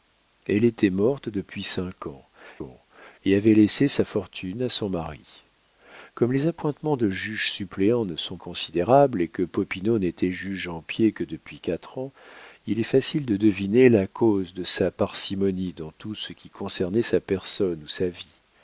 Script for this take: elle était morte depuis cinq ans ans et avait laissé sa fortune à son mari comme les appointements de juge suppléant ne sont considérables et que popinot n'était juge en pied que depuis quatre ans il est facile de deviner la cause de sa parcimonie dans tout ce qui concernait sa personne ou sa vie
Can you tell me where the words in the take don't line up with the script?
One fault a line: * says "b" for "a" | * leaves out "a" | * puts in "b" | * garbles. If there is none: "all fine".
all fine